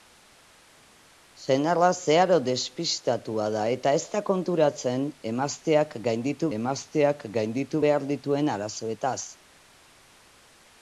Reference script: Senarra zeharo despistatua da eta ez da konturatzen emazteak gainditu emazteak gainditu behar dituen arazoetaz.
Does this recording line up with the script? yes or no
yes